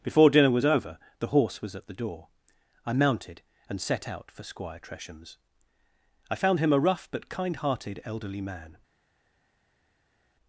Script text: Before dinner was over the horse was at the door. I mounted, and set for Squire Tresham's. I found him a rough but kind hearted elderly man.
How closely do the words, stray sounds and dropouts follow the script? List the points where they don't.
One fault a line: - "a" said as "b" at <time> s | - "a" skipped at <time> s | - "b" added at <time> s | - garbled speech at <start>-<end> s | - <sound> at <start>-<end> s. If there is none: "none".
- "out" added at 4.1 s